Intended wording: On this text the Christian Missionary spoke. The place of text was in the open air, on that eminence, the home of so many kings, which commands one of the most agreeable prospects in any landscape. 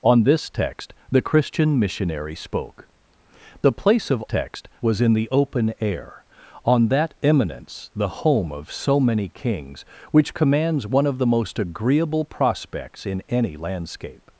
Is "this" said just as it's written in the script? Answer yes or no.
yes